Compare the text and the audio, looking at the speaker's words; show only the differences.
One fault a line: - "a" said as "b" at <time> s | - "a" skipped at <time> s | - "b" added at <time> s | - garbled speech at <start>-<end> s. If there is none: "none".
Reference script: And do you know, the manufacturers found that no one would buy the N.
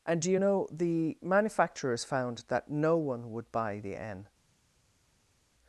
none